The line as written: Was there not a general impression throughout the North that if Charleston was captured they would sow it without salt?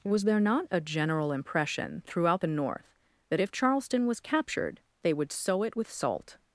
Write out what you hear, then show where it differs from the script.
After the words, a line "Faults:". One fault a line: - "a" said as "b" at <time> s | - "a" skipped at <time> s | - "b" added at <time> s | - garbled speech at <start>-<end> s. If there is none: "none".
Was there not a general impression throughout the North that if Charleston was captured they would sow it with salt?
Faults:
- "without" said as "with" at 5.8 s